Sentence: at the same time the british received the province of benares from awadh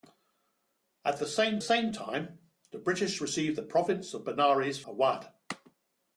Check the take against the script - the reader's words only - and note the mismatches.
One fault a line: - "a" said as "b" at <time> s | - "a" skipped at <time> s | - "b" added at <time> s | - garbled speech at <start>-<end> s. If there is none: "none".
- "same" added at 1.6 s
- "from" skipped at 4.8 s